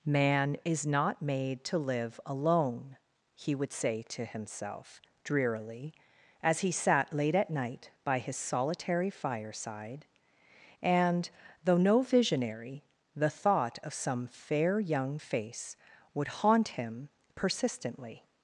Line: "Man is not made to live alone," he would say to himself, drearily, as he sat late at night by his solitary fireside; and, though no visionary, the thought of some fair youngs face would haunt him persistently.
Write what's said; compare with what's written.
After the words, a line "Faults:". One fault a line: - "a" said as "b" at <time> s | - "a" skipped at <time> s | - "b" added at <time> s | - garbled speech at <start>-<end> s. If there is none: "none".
"Man is not made to live alone," he would say to himself, drearily, as he sat late at night by his solitary fireside; and, though no visionary, the thought of some fair young face would haunt him persistently.
Faults:
- "youngs" said as "young" at 14.8 s